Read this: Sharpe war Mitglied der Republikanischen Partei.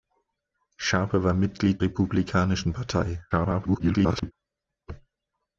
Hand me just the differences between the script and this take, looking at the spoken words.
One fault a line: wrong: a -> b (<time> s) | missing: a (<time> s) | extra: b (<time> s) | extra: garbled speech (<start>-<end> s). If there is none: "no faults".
missing: der (1.8 s)
extra: garbled speech (3.3-4.3 s)